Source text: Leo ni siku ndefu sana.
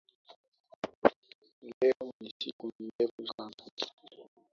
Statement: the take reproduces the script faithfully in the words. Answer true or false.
true